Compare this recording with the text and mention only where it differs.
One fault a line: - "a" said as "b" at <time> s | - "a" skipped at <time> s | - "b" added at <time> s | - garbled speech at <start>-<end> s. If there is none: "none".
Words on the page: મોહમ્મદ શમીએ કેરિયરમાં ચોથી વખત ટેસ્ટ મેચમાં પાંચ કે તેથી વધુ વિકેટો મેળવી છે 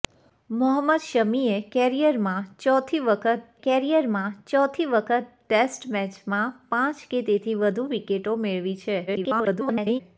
- "કેરિયરમાં ચોથી વખત" added at 3.6 s
- garbled speech at 9.1-10.0 s